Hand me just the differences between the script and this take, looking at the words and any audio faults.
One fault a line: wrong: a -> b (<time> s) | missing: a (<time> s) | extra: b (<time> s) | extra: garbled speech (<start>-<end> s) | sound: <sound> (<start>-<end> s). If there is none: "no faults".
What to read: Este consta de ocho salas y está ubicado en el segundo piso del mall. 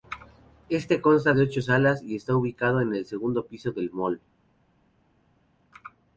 no faults